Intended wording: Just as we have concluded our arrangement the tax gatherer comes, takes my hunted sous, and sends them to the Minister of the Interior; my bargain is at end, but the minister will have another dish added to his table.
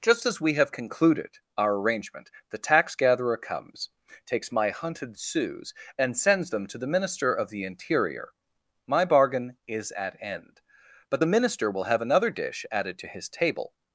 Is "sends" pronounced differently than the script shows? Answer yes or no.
no